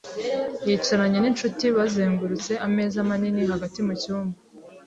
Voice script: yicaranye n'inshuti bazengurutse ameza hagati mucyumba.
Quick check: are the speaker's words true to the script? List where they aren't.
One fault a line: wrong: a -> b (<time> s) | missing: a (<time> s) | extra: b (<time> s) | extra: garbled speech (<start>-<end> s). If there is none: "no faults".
extra: manini (3.1 s)